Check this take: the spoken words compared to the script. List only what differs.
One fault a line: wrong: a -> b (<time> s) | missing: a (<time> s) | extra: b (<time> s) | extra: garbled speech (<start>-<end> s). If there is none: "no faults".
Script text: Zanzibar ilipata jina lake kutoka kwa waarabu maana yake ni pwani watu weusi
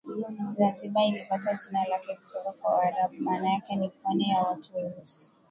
extra: ya (4.3 s)